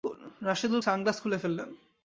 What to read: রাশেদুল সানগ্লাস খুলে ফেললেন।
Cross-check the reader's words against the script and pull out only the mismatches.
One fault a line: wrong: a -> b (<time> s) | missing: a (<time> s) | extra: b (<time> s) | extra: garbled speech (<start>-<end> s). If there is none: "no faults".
no faults